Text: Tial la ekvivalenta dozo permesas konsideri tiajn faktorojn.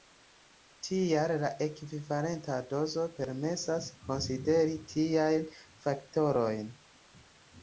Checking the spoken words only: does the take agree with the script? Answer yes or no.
yes